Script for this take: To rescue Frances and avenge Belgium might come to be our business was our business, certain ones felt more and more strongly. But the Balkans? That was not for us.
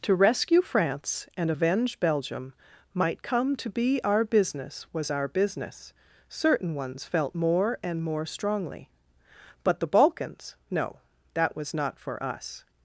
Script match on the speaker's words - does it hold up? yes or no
no